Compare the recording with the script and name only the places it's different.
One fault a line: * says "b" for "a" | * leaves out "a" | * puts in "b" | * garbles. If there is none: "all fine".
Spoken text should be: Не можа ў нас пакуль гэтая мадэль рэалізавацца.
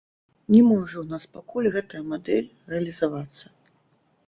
all fine